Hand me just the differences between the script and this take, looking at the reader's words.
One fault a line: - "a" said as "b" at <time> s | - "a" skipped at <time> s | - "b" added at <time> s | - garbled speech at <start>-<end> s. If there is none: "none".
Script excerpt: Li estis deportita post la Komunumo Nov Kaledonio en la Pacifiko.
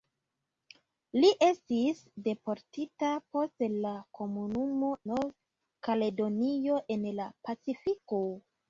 none